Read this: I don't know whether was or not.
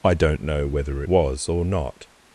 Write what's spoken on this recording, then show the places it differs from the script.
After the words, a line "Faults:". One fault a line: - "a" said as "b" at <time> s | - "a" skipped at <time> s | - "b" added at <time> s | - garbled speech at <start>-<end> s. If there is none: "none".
I don't know whether was or not.
Faults:
none